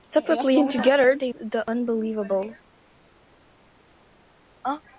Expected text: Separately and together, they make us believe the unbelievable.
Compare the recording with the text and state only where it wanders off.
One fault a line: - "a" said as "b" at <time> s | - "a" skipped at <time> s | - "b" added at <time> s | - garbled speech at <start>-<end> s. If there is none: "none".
- "make us believe" skipped at 1.3 s